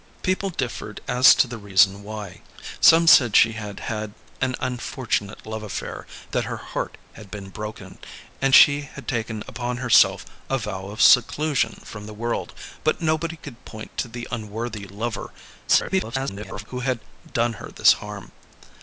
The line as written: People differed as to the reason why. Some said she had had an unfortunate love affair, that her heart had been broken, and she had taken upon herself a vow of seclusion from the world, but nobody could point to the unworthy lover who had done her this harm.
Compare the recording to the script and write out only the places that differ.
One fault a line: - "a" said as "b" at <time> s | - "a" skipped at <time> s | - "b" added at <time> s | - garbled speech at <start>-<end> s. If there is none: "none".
- garbled speech at 15.7-16.7 s